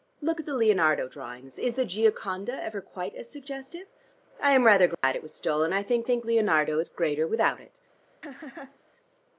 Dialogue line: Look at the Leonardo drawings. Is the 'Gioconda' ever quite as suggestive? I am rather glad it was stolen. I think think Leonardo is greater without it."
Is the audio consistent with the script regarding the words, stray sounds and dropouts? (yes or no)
no